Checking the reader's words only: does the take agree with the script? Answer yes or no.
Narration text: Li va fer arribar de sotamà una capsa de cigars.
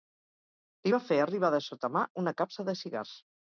yes